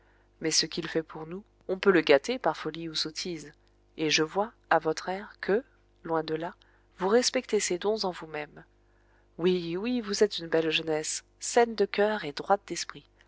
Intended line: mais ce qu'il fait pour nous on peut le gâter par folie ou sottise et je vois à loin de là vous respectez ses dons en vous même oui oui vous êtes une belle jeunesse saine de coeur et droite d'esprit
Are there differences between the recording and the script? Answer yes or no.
yes